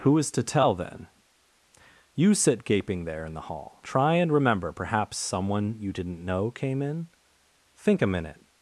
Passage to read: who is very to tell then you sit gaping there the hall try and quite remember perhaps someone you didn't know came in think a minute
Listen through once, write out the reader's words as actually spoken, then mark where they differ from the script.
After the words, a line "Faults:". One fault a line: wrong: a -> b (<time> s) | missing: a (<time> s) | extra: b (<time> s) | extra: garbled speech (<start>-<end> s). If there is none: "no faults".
who is to tell then you sit gaping there in the hall try and remember perhaps someone you didn't know came in think a minute
Faults:
missing: very (0.3 s)
extra: in (3.2 s)
missing: quite (4.3 s)